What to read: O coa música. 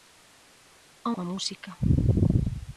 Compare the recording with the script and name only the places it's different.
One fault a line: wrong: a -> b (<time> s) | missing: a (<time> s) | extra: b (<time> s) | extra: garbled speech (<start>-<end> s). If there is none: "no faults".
no faults